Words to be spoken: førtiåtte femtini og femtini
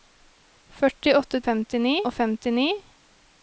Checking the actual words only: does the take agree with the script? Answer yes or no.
yes